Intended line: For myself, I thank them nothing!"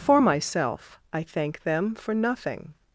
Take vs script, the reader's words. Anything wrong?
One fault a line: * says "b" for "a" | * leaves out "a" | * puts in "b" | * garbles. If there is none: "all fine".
* puts in "for"